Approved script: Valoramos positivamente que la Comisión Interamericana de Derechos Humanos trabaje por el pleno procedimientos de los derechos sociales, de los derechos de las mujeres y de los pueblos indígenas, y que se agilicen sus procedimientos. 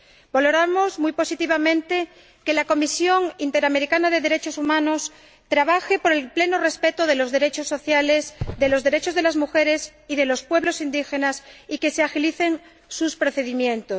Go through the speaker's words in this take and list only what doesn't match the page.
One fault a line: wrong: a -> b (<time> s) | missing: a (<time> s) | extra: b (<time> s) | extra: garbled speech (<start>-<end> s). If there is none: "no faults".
extra: muy (1.0 s)
wrong: procedimientos -> respeto (6.6 s)